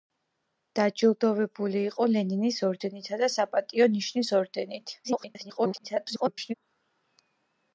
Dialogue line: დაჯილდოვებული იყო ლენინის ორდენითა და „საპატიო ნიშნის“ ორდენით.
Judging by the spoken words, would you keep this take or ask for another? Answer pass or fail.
fail